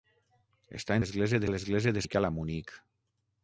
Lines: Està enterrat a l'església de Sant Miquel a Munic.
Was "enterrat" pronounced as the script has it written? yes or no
no